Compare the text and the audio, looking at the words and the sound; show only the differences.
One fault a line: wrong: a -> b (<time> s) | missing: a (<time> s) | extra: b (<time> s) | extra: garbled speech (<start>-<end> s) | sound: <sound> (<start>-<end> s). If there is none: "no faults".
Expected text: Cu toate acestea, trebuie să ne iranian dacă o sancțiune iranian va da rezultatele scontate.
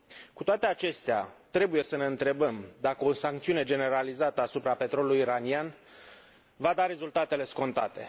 wrong: iranian -> întrebăm (2.0 s)
extra: generalizată asupra petrolului (3.6 s)